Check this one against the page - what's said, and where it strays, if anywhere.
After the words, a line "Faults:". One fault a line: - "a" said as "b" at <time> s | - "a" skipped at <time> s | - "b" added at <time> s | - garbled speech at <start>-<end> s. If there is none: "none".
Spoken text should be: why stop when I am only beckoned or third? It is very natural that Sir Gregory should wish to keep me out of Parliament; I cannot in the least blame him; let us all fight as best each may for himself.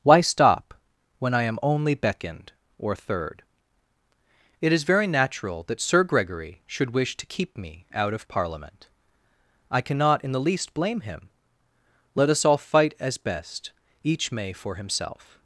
why stop when I am only beckoned or third? It is very natural that Sir Gregory should wish to keep me out of Parliament; I cannot in the least blame him; let us all fight as best each may for himself.
Faults:
none